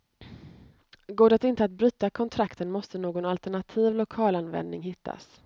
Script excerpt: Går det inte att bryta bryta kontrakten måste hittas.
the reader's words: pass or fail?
fail